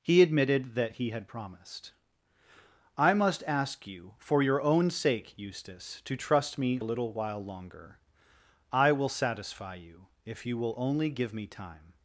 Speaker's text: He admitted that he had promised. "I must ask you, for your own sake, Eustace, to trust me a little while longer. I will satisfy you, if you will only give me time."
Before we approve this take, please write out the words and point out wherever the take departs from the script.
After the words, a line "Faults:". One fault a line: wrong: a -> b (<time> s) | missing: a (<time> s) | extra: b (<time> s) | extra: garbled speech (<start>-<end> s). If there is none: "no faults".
He admitted that he had promised. "I must ask you, for your own sake, Eustace, to trust me a little while longer. I will satisfy you, if you will only give me time."
Faults:
no faults